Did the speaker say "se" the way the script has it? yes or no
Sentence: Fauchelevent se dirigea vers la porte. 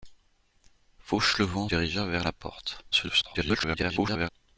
no